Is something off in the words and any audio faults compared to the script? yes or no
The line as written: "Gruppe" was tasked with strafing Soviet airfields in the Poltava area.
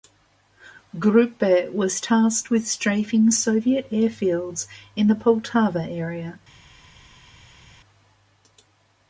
no